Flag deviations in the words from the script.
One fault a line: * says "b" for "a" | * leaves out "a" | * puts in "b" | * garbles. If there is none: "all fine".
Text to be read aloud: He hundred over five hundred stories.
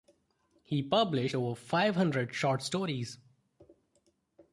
* says "published" for "hundred"
* puts in "short"